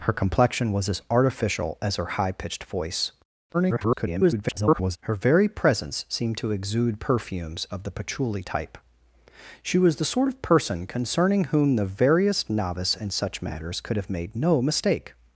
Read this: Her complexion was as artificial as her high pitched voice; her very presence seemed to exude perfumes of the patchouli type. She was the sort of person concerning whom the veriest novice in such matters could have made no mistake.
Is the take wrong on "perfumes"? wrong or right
right